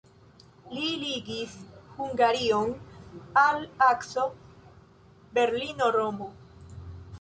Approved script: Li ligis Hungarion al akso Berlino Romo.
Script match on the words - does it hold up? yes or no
yes